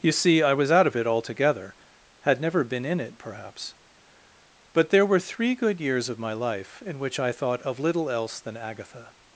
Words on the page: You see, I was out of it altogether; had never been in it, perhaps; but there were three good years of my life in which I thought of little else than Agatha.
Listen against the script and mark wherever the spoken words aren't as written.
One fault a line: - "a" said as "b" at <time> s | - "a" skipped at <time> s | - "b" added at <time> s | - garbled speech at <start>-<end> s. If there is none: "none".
none